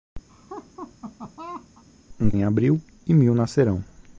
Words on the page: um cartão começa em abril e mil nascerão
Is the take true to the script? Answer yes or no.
no